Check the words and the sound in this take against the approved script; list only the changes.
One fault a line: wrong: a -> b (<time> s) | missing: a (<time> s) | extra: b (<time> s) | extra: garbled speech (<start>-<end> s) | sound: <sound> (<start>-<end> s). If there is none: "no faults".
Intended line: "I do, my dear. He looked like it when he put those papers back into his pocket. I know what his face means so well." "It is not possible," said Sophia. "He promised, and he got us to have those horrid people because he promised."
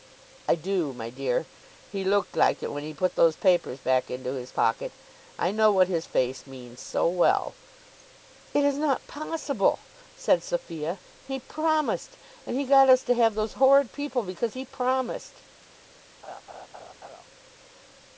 sound: laugh (16.2-17.2 s)